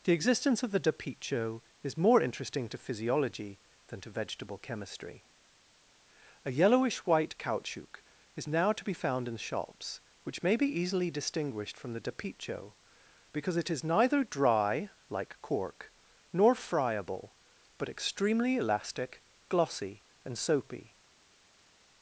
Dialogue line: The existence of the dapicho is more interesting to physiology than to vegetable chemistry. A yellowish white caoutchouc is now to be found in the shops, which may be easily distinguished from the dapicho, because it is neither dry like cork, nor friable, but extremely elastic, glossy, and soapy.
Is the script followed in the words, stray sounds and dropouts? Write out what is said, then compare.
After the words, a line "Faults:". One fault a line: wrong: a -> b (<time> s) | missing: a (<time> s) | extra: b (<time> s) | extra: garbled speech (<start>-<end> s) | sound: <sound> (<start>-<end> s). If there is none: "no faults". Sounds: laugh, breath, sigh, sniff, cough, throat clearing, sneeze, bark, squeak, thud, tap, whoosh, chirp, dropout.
The existence of the dapicho is more interesting to physiology than to vegetable chemistry. A yellowish white caoutchouc is now to be found in shops, which may be easily distinguished from the dapicho, because it is neither dry like cork, nor friable, but extremely elastic, glossy, and soapy.
Faults:
missing: the (9.3 s)